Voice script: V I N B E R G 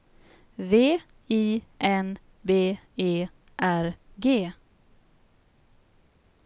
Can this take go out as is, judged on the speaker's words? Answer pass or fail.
pass